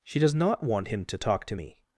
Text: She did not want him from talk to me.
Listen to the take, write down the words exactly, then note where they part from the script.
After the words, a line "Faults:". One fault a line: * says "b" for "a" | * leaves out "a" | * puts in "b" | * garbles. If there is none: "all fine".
She does not want him to talk to me.
Faults:
* says "does" for "did"
* says "to" for "from"